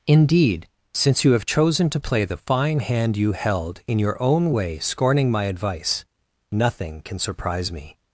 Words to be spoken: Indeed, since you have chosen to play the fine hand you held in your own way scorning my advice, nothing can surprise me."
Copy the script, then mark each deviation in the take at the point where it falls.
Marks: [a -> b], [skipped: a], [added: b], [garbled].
Indeed, since you have chosen to play the fine hand you held in your own way scorning my advice, nothing can surprise me."